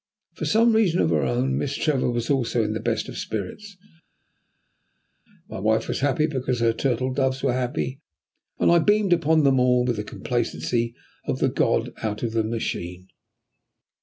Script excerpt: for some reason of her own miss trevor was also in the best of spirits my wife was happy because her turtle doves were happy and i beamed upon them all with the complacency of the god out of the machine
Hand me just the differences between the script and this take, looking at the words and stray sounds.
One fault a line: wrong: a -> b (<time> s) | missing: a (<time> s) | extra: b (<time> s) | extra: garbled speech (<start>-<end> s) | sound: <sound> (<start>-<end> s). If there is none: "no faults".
no faults